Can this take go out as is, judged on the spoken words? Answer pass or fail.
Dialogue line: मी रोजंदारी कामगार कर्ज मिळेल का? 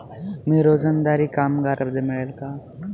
pass